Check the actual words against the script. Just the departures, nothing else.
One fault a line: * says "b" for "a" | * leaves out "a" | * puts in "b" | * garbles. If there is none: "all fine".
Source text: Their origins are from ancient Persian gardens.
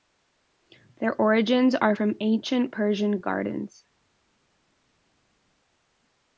all fine